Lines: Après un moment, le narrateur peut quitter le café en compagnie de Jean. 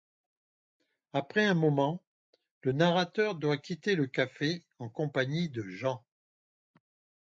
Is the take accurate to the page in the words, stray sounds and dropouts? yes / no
no